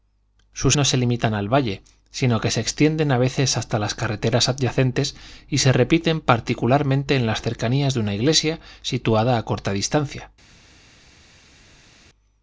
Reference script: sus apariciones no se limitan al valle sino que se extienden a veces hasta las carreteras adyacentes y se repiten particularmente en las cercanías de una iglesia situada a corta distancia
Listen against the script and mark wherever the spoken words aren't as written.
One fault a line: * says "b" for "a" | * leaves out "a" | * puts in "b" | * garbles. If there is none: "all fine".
* leaves out "apariciones"